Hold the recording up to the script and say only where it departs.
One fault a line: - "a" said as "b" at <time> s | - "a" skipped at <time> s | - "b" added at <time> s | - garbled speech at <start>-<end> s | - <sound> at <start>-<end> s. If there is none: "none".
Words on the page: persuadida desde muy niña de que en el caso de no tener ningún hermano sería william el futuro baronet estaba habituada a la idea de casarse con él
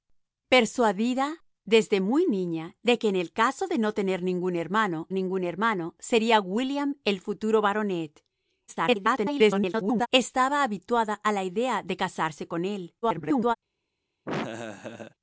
- "ningún hermano" added at 5.1 s
- garbled speech at 8.7-10.1 s
- garbled speech at 13.0-13.6 s
- laugh at 14.3-15.2 s